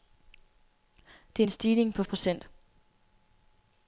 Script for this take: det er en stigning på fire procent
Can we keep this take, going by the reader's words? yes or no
no